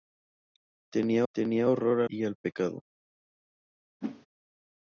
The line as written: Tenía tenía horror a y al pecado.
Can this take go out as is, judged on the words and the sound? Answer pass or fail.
fail